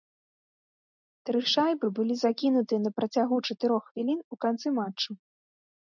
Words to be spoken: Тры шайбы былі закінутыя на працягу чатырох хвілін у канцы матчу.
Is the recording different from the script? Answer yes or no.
no